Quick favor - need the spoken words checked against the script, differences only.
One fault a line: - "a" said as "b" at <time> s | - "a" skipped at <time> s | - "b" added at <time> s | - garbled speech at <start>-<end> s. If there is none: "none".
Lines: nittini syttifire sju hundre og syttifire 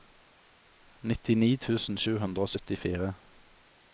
- "syttifire" said as "tusen" at 1.6 s